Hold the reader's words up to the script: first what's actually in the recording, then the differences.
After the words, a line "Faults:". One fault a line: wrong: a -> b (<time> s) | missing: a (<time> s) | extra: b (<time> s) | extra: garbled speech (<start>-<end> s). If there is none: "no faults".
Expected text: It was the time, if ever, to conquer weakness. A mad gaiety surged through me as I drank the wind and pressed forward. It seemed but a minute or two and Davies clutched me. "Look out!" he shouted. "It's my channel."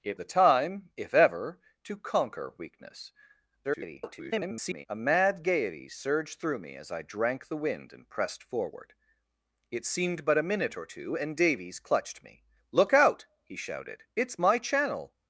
It the time, if ever, to conquer weakness. [garbled] A mad gaiety surged through me as I drank the wind and pressed forward. It seemed but a minute or two and Davies clutched me. "Look out!" he shouted. "It's my channel."
Faults:
missing: was (0.2 s)
extra: garbled speech (3.6-4.9 s)